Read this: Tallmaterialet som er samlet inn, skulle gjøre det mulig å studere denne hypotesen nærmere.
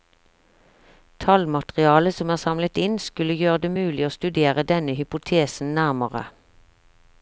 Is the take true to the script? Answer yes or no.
yes